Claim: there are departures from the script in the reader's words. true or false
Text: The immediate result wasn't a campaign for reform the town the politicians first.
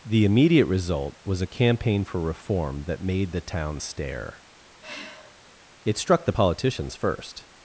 true